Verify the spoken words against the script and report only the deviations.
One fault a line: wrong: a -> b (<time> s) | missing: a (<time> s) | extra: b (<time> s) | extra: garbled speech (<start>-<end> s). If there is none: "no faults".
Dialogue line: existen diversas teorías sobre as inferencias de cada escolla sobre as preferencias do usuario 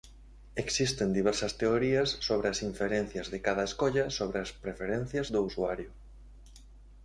no faults